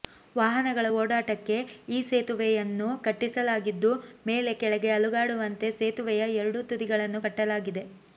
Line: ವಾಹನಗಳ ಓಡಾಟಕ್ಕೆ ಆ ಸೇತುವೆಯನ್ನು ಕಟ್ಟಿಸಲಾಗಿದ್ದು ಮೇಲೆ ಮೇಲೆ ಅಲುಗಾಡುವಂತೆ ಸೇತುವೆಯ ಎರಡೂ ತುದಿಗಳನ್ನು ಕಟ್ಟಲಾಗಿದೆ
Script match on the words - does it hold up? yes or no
no